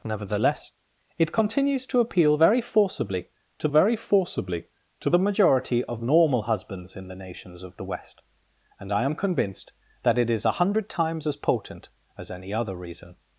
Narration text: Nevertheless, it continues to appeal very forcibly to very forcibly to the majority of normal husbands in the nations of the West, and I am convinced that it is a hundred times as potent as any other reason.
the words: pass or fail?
pass